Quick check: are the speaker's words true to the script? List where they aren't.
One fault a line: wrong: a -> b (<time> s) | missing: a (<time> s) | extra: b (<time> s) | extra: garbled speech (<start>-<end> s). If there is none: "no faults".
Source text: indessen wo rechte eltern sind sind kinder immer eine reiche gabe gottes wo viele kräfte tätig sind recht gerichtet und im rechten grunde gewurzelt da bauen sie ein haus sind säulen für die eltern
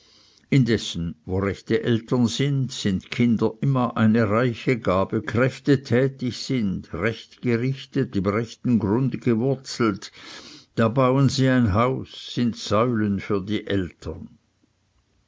missing: gottes wo viele (5.2 s)
missing: und (8.2 s)